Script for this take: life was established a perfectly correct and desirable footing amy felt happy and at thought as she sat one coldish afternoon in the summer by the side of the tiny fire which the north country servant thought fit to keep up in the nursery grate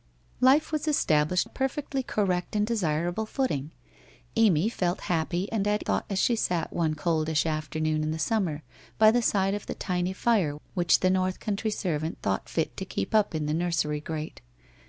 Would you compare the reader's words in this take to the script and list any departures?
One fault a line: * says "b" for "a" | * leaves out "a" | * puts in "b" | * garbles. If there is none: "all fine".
all fine